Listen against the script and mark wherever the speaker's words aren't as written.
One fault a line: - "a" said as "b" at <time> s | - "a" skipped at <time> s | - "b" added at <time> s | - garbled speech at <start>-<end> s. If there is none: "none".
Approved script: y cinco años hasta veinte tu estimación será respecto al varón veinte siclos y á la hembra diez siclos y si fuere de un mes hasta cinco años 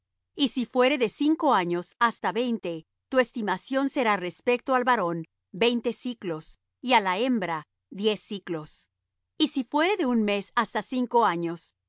- "si fuere de" added at 0.5 s